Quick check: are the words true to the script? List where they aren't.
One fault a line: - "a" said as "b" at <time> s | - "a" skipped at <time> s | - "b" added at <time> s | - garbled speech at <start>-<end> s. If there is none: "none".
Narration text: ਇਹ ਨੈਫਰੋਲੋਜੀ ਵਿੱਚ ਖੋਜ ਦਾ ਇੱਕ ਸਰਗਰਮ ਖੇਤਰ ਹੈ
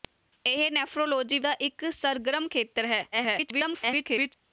- "ਵਿੱਚ ਖੋਜ" skipped at 1.4 s
- garbled speech at 3.1-4.3 s